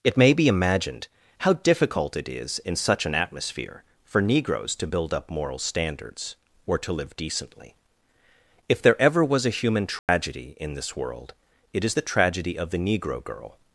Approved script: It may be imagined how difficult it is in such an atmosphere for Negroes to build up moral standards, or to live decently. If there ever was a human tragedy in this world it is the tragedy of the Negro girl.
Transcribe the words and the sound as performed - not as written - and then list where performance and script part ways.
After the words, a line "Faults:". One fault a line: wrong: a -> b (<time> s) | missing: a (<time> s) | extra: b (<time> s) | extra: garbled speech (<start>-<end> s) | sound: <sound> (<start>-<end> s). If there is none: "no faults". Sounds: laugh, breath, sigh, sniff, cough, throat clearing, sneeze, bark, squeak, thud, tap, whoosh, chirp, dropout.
It may be imagined how difficult it is in such an atmosphere for Negroes to build up moral standards, or to live decently. If there ever was a human tragedy in this world it is the tragedy of the Negro girl.
Faults:
sound: dropout (10.0-10.1 s)